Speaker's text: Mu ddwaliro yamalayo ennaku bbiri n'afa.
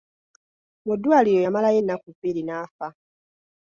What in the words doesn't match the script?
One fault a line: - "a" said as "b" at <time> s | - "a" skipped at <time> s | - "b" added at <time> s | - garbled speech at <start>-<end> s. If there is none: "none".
none